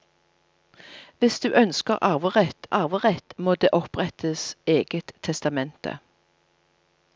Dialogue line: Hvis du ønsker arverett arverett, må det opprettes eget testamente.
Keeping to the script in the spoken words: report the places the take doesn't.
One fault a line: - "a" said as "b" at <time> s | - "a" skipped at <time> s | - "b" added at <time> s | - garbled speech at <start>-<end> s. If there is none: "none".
none